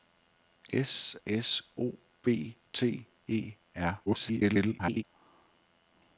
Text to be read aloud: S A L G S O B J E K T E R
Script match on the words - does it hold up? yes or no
no